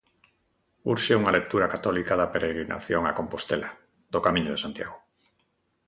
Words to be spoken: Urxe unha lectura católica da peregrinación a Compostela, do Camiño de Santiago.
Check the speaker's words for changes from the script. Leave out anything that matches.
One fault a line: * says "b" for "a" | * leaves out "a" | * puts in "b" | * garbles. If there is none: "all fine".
all fine